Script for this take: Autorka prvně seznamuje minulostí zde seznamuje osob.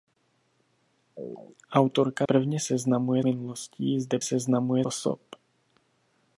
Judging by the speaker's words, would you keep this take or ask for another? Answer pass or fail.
pass